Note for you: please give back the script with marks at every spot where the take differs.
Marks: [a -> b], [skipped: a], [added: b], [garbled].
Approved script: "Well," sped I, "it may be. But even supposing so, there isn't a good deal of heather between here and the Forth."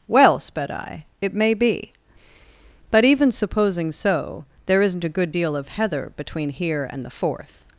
"Well," sped I, "it may be. But even supposing so, there isn't a good deal of heather between here and the Forth."